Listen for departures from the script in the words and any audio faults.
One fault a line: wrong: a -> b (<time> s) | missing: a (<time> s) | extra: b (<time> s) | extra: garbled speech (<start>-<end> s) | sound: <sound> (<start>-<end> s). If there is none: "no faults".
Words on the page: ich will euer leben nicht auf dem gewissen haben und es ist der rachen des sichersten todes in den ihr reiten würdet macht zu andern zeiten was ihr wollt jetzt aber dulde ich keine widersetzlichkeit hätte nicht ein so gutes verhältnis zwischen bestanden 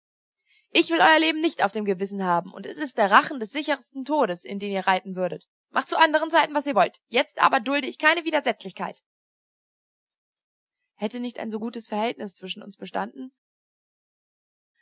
extra: uns (12.6 s)